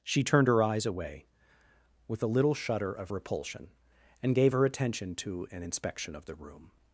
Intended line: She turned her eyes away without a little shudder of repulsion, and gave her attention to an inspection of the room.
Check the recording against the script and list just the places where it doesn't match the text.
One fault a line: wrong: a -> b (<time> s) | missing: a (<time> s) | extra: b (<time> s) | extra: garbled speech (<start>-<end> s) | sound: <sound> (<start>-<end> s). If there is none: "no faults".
wrong: without -> with (2.1 s)